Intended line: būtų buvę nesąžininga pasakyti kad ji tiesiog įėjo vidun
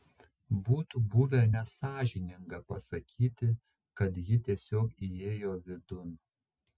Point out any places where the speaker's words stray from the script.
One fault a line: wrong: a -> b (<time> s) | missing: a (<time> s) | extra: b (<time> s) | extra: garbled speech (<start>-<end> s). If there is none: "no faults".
no faults